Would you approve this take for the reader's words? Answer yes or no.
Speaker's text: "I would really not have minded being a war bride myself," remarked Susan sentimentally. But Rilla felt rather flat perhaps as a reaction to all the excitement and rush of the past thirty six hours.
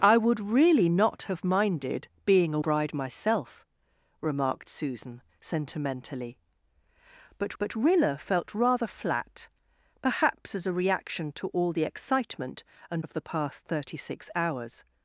no